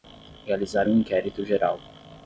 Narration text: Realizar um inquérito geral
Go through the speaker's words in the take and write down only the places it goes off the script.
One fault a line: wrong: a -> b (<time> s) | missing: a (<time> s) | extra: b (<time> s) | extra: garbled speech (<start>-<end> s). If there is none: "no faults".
no faults